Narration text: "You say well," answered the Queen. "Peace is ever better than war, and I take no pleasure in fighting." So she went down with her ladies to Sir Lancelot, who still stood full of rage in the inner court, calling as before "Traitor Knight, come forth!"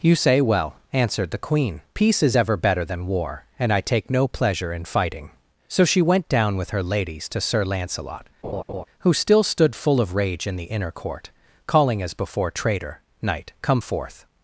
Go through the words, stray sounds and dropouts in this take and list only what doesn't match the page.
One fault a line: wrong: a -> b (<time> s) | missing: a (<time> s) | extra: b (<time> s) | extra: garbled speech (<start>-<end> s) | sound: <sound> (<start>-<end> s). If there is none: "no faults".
sound: laugh (8.4-8.8 s)